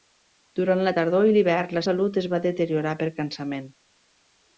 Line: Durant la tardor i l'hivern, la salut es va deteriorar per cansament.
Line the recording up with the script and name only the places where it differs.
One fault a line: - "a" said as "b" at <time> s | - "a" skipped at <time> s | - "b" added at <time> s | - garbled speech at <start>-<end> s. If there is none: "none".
none